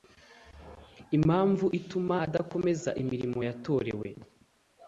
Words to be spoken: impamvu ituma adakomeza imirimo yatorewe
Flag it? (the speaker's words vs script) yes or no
no